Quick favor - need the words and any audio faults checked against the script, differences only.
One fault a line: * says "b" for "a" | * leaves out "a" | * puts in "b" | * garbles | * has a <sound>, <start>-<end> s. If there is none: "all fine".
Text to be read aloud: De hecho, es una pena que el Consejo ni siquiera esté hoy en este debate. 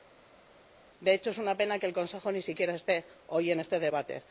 all fine